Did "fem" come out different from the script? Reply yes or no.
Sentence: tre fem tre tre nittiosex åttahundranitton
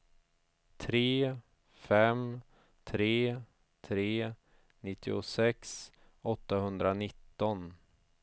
no